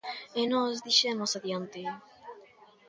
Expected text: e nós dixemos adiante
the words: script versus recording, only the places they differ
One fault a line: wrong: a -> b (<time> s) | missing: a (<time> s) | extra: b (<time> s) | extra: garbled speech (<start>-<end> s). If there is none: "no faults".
no faults